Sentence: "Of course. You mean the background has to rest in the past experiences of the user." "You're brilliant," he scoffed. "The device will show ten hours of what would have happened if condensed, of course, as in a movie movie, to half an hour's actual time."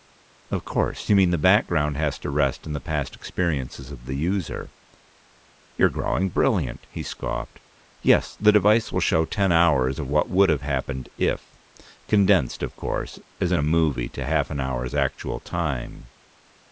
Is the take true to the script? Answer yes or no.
no